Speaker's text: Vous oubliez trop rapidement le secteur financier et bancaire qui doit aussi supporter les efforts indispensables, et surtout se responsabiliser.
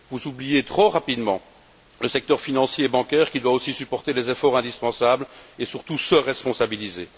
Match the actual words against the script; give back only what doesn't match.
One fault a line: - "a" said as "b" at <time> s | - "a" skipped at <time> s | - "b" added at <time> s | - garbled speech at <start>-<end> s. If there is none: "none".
none